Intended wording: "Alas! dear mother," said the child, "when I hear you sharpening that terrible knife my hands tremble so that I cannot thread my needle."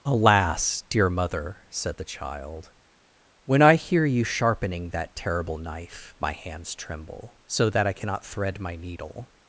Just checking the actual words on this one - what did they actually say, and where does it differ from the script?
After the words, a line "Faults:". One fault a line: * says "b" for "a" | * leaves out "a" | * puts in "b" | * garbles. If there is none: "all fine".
"Alas! dear mother," said the child, "when I hear you sharpening that terrible knife my hands tremble so that I cannot thread my needle."
Faults:
all fine